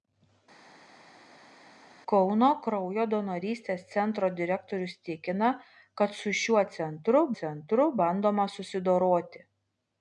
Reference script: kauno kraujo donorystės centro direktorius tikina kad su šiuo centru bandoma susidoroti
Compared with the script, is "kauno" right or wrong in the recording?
right